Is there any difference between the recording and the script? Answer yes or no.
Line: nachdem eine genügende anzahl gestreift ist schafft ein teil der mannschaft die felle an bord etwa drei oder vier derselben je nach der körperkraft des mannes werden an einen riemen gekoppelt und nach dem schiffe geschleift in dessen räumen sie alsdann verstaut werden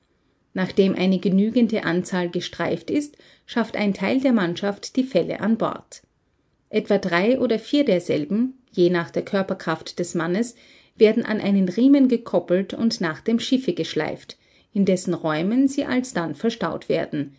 no